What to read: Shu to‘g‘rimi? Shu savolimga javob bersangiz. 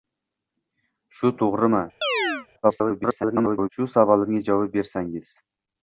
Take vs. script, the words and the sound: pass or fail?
fail